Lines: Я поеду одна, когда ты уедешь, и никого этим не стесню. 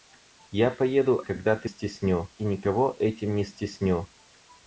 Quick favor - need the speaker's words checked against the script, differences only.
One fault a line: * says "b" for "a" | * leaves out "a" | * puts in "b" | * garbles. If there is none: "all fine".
* leaves out "одна"
* says "стесню" for "уедешь"